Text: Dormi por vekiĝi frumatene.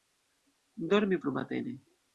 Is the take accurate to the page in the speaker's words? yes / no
no